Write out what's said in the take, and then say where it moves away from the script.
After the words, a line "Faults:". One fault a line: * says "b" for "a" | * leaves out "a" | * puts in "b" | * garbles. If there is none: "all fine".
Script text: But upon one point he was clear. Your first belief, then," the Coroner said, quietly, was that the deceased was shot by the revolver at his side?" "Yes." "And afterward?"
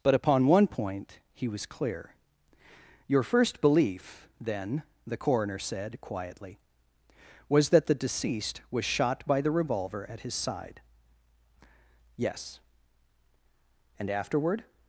But upon one point he was clear. Your first belief, then," the Coroner said, quietly, was that the deceased was shot by the revolver at his side?" "Yes." "And afterward?"
Faults:
all fine